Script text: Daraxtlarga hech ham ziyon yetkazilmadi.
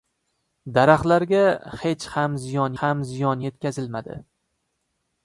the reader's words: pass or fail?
fail